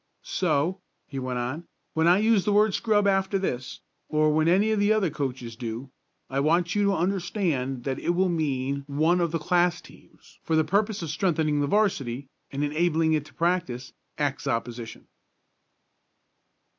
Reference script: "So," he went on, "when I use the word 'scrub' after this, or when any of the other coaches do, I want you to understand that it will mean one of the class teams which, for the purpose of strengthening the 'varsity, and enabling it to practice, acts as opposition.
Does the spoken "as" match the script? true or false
false